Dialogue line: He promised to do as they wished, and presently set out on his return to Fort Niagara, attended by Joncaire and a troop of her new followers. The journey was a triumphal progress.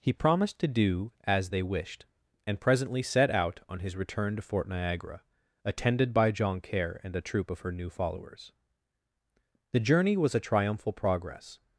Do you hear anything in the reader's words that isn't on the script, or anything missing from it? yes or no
no